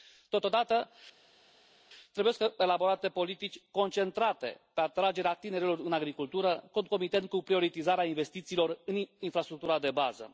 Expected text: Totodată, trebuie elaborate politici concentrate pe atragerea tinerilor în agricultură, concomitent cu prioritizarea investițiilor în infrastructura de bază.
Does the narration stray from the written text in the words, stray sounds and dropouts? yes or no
no